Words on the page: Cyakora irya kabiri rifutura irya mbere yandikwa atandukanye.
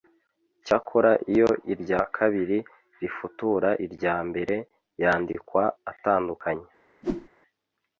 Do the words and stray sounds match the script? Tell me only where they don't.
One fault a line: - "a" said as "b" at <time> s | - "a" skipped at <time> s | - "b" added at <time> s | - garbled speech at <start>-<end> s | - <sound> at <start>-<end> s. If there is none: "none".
- "iyo" added at 1.3 s
- whoosh at 7.0-7.3 s